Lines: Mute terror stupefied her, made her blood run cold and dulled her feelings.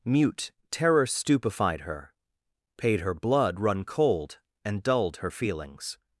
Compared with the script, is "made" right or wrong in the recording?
wrong